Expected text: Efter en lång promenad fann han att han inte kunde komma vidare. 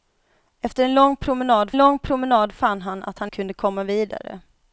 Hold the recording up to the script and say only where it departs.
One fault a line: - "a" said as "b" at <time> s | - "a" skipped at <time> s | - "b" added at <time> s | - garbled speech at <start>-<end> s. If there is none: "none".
- "lång promenad" added at 1.8 s
- "inte" skipped at 3.3 s